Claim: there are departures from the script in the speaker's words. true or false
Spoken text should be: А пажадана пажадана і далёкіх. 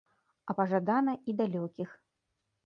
true